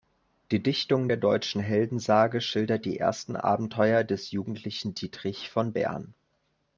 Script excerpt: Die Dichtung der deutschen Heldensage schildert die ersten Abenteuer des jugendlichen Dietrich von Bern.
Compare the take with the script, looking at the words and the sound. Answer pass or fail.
pass